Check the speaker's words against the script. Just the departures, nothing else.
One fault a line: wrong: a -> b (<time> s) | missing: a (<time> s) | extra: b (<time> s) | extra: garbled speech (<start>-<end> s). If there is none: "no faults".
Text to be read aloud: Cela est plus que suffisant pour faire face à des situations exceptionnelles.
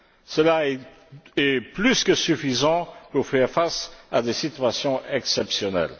no faults